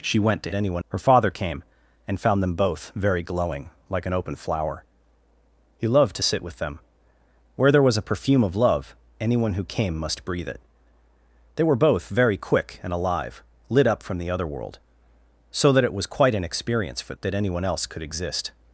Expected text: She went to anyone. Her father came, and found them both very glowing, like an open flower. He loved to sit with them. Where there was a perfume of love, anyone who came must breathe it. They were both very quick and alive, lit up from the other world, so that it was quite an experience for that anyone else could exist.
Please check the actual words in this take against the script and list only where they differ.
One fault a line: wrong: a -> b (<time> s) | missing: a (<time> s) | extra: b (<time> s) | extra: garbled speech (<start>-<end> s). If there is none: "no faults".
no faults